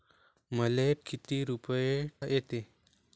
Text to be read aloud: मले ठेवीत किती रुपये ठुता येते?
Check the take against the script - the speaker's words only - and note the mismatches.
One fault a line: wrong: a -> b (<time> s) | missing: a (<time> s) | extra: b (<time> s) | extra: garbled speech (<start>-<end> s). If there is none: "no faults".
missing: ठेवीत (0.9 s)
missing: ठुता (1.9 s)